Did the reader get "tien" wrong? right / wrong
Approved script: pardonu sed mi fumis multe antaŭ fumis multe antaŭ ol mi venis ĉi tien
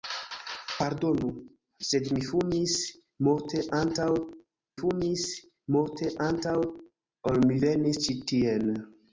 right